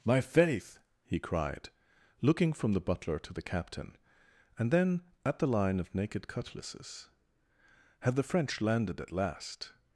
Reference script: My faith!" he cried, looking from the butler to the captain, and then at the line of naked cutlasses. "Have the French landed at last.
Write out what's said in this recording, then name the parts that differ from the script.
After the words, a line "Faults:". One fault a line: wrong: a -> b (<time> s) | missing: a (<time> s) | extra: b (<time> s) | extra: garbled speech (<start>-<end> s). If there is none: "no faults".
My faith!" he cried, looking from the butler to the captain, and then at the line of naked cutlasses. "Had the French landed at last.
Faults:
wrong: Have -> Had (8.0 s)